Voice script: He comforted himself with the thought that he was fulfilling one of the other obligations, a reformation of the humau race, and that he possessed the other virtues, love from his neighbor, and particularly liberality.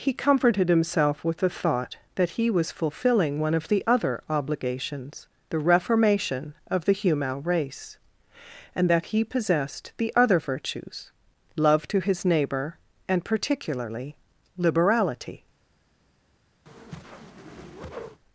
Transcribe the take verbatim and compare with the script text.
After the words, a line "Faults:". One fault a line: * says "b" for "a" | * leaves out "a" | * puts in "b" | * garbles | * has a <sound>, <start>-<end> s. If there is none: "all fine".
He comforted himself with the thought that he was fulfilling one of the other obligations, the reformation of the humau race, and that he possessed the other virtues, love to his neighbor, and particularly liberality.
Faults:
* says "the" for "a"
* says "to" for "from"
* has a whoosh, 16.7-18.2 s